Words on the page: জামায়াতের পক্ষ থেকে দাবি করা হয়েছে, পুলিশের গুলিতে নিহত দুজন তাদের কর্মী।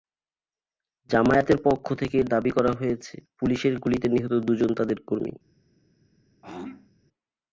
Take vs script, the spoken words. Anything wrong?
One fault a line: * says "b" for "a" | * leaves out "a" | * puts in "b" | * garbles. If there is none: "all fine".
all fine